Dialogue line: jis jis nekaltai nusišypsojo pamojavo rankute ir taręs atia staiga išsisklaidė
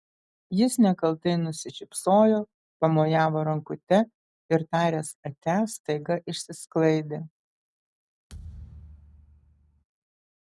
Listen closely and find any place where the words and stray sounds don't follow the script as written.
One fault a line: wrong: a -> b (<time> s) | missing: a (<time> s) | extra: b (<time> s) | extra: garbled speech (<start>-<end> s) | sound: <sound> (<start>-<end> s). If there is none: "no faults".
missing: jis (0.8 s)
sound: thud (8.3-9.8 s)